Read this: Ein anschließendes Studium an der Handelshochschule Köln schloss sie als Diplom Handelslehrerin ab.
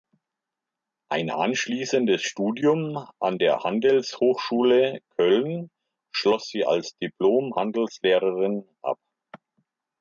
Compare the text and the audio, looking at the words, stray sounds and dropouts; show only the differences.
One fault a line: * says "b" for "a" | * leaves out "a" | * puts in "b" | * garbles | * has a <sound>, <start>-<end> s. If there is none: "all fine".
all fine